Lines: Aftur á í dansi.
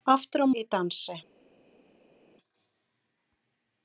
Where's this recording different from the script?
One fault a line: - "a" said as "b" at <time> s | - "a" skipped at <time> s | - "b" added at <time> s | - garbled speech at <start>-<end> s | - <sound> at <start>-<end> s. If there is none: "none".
none